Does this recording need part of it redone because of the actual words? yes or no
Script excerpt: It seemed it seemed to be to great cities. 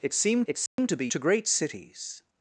no